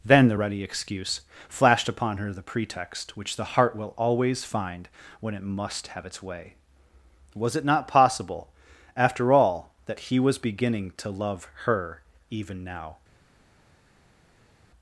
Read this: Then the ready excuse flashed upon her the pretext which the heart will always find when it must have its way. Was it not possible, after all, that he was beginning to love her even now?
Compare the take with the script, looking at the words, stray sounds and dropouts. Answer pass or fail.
pass